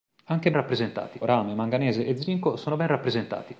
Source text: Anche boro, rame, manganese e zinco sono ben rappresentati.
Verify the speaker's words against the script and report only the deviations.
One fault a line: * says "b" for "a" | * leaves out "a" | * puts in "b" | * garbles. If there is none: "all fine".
* says "rappresentati" for "boro"